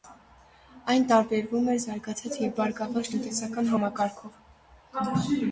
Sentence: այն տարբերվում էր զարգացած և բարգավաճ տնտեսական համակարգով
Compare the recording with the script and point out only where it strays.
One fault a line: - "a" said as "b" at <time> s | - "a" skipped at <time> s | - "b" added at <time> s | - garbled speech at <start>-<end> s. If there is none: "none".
none